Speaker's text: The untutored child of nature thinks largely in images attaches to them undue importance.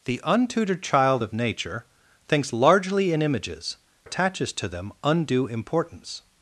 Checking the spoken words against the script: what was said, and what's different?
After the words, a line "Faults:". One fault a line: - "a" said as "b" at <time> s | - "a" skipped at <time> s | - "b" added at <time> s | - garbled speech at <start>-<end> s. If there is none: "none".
The untutored child of nature thinks largely in images attaches to them undue importance.
Faults:
none